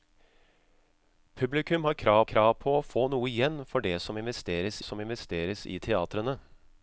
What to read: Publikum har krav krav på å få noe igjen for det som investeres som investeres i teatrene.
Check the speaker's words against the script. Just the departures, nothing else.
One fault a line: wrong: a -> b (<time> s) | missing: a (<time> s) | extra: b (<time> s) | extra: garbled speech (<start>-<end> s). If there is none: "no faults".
no faults